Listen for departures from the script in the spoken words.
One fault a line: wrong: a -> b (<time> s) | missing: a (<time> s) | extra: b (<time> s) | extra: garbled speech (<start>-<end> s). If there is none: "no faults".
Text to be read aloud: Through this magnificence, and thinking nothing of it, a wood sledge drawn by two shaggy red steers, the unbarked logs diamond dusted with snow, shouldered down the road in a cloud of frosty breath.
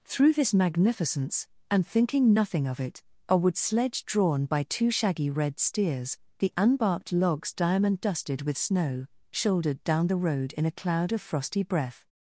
no faults